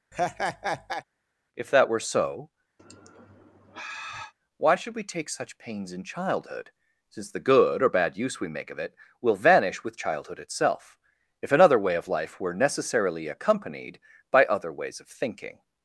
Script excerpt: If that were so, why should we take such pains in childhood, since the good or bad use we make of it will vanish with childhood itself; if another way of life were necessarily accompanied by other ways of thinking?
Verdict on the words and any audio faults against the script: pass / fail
fail